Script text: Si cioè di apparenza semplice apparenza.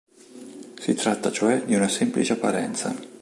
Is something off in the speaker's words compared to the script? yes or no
yes